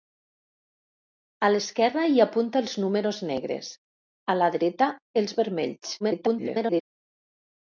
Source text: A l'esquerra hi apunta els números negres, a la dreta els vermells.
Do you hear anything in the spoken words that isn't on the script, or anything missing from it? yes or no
yes